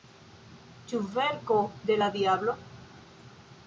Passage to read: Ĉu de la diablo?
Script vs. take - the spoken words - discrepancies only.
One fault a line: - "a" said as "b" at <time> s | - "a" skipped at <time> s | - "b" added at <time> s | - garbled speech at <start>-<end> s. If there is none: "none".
- "verko" added at 1.2 s